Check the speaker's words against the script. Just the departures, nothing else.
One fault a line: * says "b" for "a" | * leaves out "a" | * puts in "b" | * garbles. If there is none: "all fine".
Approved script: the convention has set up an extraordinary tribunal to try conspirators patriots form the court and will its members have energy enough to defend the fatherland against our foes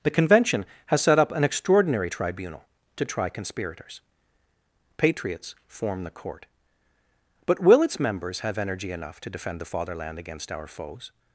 * says "but" for "and"